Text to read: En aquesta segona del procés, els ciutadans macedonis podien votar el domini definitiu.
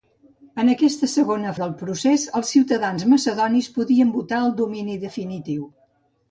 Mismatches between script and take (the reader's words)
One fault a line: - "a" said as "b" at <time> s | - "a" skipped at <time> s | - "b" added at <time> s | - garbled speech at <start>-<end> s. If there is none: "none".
none